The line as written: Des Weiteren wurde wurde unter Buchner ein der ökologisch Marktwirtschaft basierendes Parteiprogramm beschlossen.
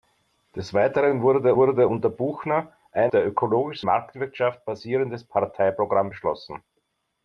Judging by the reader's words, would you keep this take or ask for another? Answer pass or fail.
pass